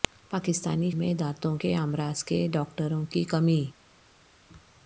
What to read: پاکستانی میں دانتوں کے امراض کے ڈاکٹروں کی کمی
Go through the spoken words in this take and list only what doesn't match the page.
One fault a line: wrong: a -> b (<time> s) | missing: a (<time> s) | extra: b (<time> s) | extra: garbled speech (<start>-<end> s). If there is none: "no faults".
no faults